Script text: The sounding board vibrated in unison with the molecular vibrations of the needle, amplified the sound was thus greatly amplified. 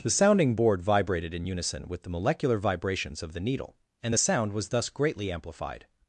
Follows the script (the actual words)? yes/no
no